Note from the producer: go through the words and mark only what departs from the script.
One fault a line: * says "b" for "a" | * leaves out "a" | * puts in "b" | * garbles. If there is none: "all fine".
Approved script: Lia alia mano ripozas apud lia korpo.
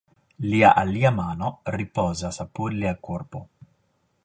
all fine